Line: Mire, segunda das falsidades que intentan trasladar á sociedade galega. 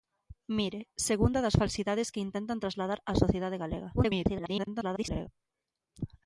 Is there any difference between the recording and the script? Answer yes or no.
yes